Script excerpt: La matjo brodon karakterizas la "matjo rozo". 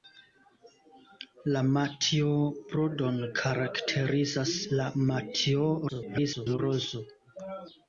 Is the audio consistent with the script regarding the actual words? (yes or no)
no